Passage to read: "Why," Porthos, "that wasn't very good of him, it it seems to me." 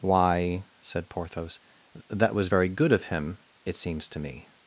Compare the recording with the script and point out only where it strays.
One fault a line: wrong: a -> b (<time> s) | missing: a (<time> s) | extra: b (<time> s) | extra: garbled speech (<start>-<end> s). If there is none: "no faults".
extra: said (0.8 s)
wrong: wasn't -> was (2.3 s)
missing: it (3.8 s)